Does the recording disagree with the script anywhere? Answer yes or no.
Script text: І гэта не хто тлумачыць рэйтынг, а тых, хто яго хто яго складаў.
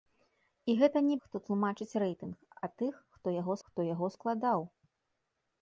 no